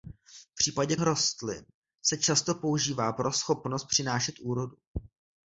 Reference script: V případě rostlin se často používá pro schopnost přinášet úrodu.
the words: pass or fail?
pass